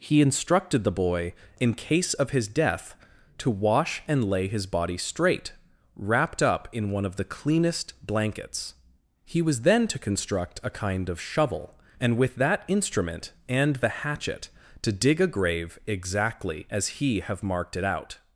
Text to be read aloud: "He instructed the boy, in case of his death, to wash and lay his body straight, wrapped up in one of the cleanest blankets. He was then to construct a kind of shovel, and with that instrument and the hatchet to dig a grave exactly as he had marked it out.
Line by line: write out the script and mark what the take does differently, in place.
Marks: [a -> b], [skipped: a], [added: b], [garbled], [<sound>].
"He instructed the boy, in case of his death, to wash and lay his body straight, wrapped up in one of the cleanest blankets. He was then to construct a kind of shovel, and with that instrument and the hatchet to dig a grave exactly as he [had -> have] marked it out.